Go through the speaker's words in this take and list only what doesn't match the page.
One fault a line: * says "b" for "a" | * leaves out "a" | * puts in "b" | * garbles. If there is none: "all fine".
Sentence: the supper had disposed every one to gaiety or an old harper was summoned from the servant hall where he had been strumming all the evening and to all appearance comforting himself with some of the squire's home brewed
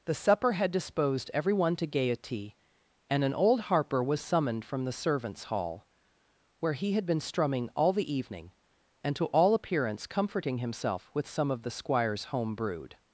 * says "and" for "or"
* says "servants" for "servant"